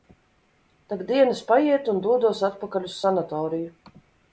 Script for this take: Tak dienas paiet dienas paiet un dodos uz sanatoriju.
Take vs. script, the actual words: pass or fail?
fail